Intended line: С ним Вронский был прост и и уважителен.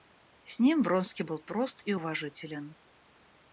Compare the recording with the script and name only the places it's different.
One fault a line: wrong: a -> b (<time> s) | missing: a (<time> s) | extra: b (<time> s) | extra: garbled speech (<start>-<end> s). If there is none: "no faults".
missing: и (1.9 s)